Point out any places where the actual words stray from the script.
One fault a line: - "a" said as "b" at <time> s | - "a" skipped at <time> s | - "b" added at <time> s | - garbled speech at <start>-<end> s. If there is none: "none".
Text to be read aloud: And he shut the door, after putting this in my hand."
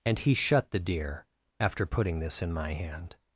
- "door" said as "deer" at 0.8 s